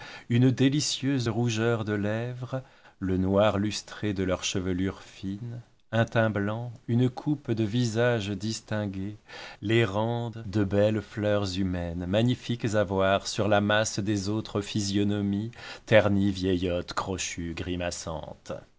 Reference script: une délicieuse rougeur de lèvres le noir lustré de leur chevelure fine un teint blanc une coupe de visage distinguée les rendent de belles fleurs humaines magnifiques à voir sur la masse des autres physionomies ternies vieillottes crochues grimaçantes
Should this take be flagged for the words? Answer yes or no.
no